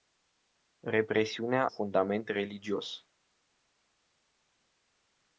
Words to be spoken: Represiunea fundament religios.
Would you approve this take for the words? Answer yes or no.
yes